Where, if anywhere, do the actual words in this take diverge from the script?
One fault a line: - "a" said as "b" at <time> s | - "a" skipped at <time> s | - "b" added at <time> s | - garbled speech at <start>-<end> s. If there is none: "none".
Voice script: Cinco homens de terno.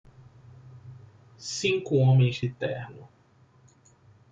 none